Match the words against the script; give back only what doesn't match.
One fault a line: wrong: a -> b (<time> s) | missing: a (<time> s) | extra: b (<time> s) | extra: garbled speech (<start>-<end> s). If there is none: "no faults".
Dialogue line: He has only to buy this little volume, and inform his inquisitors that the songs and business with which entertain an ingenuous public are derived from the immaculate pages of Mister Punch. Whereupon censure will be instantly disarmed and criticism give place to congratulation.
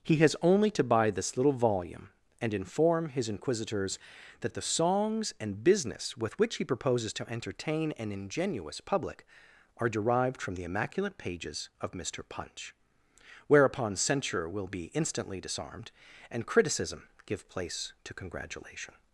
extra: he proposes to (6.5 s)